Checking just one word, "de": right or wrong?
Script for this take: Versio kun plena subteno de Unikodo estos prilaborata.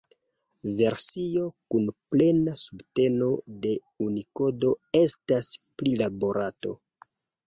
right